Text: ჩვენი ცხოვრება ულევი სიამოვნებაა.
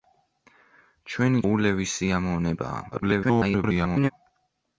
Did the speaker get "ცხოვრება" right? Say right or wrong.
wrong